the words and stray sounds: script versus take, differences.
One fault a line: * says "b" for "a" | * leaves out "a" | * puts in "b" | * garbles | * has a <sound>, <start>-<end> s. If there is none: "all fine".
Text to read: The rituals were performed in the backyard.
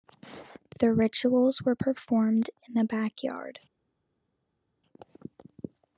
all fine